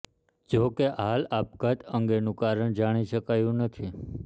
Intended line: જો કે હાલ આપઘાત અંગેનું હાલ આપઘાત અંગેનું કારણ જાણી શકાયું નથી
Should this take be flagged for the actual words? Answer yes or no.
yes